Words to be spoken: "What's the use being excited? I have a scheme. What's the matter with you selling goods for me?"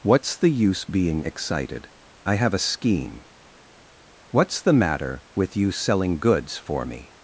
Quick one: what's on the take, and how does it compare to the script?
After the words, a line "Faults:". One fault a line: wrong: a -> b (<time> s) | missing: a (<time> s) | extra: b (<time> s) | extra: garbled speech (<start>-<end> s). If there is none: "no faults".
"What's the use being excited? I have a scheme. What's the matter with you selling goods for me?"
Faults:
no faults